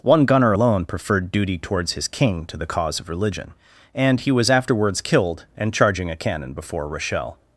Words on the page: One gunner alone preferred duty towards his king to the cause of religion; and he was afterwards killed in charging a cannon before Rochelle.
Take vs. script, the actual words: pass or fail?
fail